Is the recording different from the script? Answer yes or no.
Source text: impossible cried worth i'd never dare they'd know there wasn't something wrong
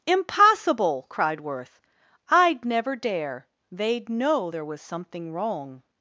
yes